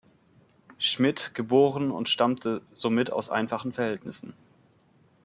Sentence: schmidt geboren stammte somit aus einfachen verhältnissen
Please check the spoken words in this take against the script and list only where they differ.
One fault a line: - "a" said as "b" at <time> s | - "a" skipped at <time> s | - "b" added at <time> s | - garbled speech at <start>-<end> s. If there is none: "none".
- "und" added at 1.9 s